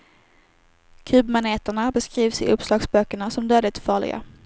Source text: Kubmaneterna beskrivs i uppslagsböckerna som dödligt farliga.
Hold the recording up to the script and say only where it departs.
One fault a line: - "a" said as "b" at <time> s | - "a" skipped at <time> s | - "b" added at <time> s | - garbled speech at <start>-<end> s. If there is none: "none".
none